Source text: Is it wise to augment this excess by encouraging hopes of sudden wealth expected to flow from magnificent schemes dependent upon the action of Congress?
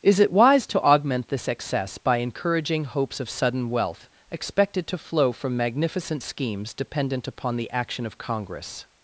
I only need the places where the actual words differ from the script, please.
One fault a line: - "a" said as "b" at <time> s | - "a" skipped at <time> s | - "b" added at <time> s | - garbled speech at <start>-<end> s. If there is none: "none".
none